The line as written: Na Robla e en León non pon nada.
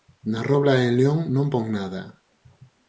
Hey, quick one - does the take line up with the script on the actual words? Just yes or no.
yes